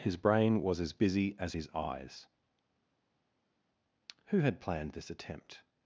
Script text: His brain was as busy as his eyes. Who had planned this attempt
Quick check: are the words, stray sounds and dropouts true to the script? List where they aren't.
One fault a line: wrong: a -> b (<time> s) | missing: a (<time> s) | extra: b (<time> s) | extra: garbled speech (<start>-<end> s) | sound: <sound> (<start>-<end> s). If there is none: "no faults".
no faults